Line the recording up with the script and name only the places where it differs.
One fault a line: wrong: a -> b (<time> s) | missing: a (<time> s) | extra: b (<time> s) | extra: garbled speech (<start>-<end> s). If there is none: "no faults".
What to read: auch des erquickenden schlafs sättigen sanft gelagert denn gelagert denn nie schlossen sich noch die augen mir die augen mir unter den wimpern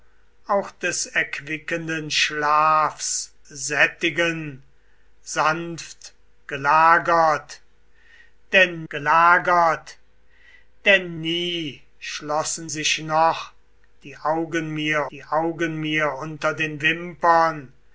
no faults